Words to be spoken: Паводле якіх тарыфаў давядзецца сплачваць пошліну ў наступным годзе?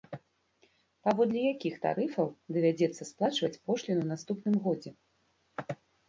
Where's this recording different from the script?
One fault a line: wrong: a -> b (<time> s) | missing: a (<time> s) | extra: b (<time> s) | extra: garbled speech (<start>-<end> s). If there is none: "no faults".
no faults